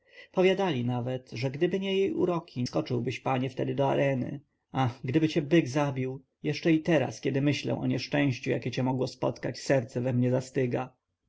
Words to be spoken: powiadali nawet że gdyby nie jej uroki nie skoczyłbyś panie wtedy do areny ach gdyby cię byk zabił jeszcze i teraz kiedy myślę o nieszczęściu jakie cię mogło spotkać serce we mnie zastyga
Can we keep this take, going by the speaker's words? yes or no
no